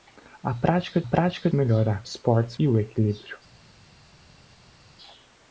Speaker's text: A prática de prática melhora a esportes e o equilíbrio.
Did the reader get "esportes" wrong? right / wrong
right